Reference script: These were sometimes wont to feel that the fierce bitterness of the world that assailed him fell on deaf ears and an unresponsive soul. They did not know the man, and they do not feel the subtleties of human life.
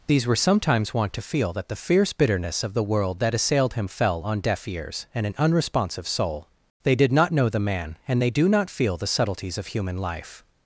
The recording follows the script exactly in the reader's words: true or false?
true